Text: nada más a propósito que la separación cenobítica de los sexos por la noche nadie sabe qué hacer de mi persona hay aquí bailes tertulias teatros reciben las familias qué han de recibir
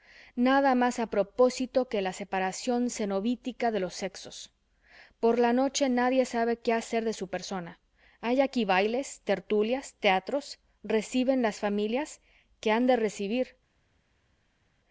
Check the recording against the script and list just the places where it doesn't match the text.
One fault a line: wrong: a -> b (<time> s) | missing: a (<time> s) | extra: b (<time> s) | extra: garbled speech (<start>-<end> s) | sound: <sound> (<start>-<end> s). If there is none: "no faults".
wrong: mi -> su (7.1 s)